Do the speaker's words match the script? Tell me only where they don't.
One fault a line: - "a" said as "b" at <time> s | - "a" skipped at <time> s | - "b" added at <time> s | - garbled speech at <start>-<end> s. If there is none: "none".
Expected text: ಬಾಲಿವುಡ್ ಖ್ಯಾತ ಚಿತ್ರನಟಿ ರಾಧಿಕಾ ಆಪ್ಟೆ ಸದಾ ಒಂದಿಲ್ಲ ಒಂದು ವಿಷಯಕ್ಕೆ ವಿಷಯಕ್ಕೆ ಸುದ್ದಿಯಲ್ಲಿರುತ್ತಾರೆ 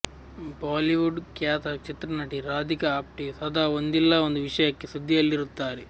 - "ವಿಷಯಕ್ಕೆ" skipped at 4.9 s